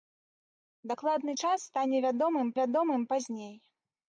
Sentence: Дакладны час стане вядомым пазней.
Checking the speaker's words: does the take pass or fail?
fail